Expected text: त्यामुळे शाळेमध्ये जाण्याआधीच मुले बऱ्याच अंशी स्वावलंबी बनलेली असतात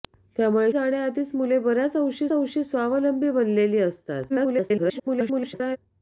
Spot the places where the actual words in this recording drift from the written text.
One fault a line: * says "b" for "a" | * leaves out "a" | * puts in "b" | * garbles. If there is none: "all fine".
* leaves out "शाळेमध्ये"
* puts in "अंशी"
* garbles